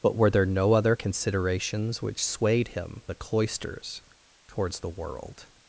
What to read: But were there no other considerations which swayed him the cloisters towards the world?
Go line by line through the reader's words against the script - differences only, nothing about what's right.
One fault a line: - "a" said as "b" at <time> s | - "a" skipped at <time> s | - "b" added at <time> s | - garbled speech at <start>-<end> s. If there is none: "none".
none